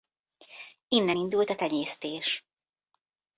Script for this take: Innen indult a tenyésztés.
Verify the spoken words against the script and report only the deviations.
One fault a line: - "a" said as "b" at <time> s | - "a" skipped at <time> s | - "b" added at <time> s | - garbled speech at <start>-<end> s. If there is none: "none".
none